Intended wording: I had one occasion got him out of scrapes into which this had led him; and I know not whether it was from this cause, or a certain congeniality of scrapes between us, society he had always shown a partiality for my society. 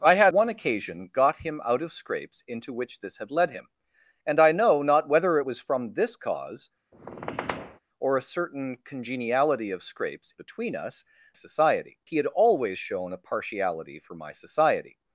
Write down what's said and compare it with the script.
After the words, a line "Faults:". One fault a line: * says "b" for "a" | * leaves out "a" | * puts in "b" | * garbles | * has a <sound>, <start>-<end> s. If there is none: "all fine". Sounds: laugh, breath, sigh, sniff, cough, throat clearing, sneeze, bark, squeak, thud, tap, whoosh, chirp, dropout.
I had one occasion got him out of scrapes into which this had led him; and I know not whether it was from this cause, or a certain congeniality of scrapes between us, society he had always shown a partiality for my society.
Faults:
* has a squeak, 6.9-7.8 s